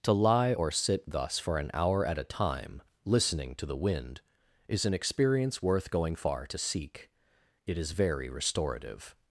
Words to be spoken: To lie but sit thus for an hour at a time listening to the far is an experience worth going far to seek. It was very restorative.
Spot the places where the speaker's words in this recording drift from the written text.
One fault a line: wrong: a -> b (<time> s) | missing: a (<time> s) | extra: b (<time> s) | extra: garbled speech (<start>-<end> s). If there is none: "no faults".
wrong: but -> or (0.5 s)
wrong: far -> wind (3.7 s)
wrong: was -> is (7.8 s)